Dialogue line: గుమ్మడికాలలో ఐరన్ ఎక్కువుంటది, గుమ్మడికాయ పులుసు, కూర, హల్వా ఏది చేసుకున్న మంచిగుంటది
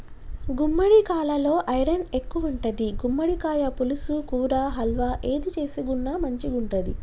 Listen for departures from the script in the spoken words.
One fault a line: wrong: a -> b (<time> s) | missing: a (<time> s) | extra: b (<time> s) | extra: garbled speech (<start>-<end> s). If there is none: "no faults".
no faults